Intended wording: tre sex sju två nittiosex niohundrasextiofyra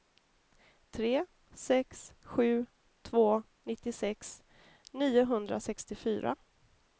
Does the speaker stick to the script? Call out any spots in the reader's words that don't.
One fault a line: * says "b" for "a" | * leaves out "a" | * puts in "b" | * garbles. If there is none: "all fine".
all fine